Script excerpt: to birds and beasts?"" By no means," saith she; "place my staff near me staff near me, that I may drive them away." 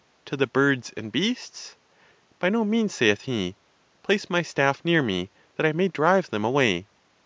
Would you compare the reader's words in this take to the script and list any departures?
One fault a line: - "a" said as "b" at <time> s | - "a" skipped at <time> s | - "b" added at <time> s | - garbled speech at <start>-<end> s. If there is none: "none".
- "the" added at 0.3 s
- "she" said as "he" at 3.2 s
- "staff near me" skipped at 5.3 s